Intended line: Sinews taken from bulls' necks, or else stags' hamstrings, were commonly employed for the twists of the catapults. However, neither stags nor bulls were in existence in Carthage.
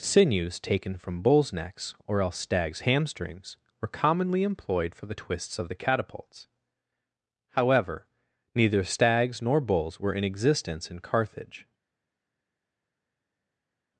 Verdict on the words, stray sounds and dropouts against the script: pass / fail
pass